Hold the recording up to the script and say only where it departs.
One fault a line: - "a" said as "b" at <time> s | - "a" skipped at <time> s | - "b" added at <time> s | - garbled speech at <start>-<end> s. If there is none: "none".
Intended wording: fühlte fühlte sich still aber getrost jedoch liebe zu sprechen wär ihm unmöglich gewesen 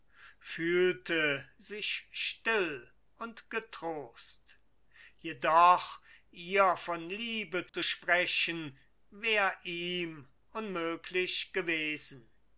- "fühlte" skipped at 1.5 s
- "aber" said as "und" at 3.2 s
- "ihr von" added at 6.3 s